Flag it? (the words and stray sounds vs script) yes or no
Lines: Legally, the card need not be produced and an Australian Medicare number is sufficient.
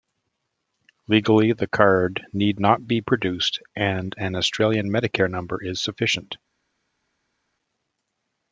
no